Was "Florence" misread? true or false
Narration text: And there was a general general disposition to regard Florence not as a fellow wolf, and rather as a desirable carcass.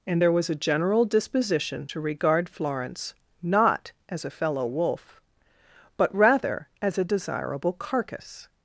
false